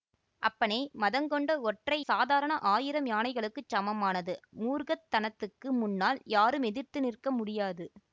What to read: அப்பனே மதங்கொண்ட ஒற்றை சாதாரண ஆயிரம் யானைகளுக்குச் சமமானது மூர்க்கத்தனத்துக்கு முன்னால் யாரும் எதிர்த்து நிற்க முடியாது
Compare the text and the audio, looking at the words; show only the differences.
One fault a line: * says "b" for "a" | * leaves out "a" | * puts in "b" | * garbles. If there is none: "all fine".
all fine